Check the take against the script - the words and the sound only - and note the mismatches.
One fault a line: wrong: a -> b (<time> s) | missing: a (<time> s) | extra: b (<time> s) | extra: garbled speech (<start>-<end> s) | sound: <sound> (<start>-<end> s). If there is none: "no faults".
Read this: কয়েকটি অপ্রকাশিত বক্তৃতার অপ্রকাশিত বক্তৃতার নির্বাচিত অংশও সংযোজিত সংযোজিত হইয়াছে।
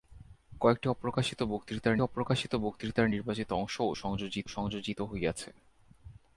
no faults